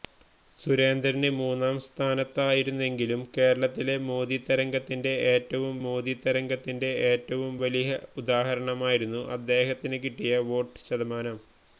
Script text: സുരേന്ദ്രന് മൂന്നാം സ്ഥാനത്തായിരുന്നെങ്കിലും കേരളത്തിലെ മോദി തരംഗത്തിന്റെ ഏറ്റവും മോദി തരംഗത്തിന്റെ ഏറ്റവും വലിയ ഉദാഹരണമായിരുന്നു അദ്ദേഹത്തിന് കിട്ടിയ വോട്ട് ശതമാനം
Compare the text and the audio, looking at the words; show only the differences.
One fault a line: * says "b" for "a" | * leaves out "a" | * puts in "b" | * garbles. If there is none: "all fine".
all fine